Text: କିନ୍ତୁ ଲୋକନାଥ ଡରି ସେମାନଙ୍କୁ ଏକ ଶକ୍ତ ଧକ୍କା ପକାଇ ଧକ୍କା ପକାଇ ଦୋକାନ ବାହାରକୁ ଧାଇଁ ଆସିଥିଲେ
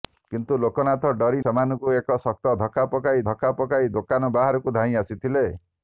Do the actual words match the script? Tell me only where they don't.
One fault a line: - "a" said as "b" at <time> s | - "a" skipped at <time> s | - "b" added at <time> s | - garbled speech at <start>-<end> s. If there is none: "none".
none